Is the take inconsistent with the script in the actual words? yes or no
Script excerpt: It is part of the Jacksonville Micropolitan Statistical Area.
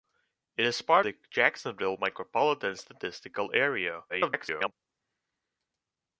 yes